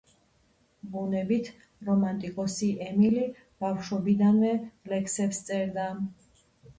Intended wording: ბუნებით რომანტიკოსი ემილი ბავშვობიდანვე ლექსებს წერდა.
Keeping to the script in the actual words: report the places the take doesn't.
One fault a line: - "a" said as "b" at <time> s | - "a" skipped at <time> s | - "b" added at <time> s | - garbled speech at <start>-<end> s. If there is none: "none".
none